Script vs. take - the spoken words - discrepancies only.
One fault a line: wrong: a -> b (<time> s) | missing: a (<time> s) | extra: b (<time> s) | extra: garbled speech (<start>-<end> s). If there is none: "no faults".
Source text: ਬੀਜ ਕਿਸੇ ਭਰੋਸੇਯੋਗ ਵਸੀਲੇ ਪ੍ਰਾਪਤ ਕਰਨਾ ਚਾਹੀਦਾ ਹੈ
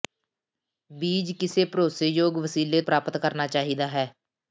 no faults